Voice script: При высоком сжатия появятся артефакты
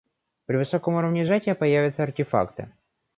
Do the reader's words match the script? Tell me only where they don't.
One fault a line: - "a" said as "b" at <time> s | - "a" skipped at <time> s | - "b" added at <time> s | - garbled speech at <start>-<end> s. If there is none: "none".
- "уровне" added at 0.9 s